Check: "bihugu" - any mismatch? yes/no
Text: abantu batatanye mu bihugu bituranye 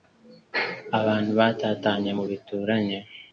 yes